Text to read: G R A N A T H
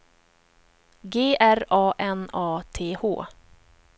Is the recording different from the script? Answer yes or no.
no